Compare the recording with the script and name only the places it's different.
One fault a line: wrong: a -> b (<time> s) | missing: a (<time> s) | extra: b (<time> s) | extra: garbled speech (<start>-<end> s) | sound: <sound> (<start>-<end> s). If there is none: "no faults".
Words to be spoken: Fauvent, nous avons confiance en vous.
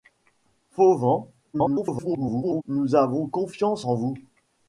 extra: garbled speech (1.5-2.6 s)